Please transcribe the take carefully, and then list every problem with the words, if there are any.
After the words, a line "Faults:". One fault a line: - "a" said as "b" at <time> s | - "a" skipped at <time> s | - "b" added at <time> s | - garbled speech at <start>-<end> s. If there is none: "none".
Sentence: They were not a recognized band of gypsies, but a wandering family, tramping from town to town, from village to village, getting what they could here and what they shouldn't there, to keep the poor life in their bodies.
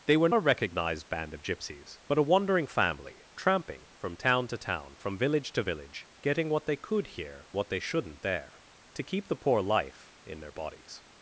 They were a recognized band of gypsies, but a wandering family, tramping from town to town, from village to village, getting what they could here what they shouldn't there, to keep the poor life in their bodies.
Faults:
- "not" skipped at 0.3 s
- "and" skipped at 7.5 s